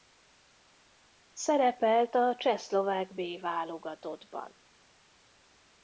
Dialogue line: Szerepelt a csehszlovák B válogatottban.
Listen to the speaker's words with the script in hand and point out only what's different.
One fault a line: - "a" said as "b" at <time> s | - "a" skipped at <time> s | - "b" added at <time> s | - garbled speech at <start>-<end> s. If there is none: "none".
none